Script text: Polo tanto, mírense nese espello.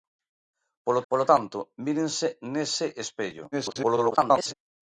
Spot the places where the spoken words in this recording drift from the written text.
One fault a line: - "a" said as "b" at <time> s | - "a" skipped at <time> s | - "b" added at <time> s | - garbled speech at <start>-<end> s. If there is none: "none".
- "polo" added at 1.1 s
- garbled speech at 3.5-4.5 s